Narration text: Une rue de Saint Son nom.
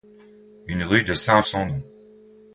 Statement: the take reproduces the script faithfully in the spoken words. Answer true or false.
true